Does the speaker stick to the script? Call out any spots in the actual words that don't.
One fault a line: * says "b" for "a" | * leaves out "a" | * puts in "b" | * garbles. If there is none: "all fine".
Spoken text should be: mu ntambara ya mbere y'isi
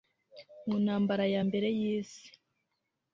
all fine